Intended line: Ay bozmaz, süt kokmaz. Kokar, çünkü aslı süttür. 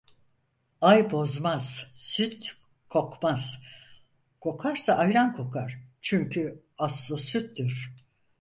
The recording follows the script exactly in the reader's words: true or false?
false